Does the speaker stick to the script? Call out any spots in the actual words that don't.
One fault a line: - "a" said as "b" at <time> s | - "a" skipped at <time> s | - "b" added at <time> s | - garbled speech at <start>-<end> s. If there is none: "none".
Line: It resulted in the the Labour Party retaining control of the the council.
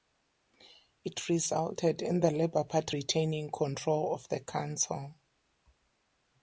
- "the" skipped at 2.3 s
- "the" skipped at 4.4 s